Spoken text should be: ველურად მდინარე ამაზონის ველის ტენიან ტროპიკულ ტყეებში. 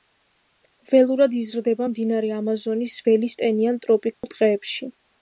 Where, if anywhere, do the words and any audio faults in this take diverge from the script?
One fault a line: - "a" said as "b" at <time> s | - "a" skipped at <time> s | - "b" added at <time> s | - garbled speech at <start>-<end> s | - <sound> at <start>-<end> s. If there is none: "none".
- "იზრდება" added at 1.4 s
- dropout at 4.1-4.2 s